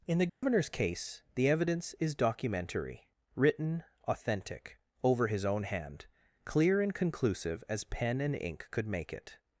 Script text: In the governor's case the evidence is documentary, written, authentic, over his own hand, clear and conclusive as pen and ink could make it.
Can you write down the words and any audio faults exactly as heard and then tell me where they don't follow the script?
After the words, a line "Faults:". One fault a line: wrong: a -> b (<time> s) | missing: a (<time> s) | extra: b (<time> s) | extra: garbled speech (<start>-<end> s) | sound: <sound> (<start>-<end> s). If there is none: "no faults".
In the governor's case the evidence is documentary, written, authentic, over his own hand, clear and conclusive as pen and ink could make it.
Faults:
sound: dropout (0.3-0.4 s)